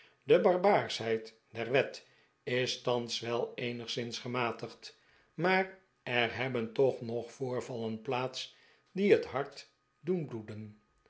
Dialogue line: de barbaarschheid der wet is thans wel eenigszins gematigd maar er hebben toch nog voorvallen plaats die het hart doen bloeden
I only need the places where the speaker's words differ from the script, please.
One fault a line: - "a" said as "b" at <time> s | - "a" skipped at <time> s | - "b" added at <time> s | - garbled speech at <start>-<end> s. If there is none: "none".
none